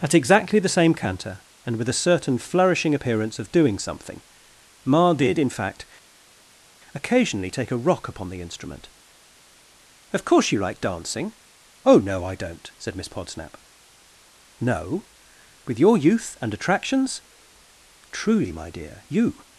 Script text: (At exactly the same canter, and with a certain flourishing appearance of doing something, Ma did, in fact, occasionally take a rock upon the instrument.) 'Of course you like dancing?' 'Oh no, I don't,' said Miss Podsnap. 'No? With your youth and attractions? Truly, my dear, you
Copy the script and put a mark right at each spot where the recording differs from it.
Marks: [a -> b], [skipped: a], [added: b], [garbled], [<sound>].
(At exactly the same canter, and with a certain flourishing appearance of doing something, Ma did, in fact, occasionally take a rock upon the instrument.) 'Of course you like dancing?' 'Oh no, I don't,' said Miss Podsnap. 'No? With your youth and attractions? Truly, my dear, you